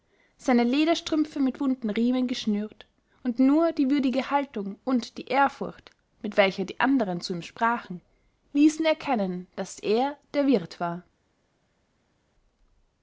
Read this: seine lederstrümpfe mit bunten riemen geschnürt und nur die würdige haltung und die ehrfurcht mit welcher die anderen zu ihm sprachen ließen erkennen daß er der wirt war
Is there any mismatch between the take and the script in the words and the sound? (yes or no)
no